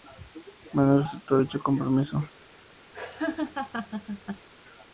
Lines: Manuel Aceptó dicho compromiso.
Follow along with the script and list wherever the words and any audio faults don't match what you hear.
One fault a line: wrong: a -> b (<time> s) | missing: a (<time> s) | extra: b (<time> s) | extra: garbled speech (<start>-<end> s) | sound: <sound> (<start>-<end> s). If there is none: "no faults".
sound: laugh (2.9-4.5 s)